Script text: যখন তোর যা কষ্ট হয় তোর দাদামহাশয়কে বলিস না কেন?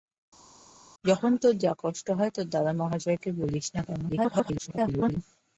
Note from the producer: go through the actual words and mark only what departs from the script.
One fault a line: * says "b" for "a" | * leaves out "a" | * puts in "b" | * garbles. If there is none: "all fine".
* garbles